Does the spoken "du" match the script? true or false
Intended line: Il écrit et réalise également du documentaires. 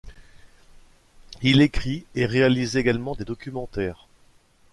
false